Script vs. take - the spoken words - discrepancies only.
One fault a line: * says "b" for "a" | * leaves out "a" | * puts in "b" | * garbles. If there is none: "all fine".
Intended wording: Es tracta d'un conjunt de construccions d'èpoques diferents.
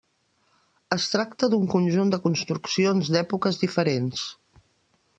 all fine